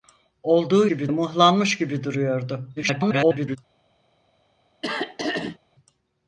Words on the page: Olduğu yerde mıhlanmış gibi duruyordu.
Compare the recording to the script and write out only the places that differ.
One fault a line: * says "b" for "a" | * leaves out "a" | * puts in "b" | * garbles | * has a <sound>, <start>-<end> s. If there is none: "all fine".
* says "gibi" for "yerde"
* garbles
* has a throat clearing, 4.8-5.6 s